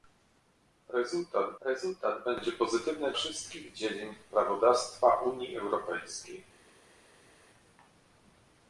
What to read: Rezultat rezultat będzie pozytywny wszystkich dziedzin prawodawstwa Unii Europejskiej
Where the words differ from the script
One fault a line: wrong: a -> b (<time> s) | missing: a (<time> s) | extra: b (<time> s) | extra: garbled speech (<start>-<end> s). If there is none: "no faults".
no faults